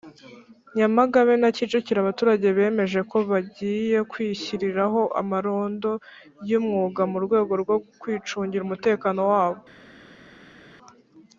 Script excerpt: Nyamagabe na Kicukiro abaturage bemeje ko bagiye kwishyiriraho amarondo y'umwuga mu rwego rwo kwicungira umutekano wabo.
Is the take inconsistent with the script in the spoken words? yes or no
no